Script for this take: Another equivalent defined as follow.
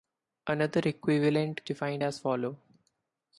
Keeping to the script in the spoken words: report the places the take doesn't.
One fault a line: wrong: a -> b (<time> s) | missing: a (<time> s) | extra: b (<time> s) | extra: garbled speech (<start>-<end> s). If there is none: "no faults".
no faults